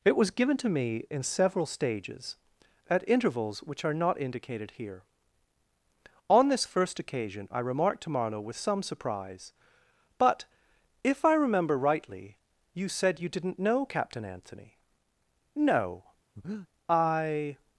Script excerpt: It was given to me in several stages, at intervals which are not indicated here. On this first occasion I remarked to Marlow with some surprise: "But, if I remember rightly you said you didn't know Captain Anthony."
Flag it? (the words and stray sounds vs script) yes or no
yes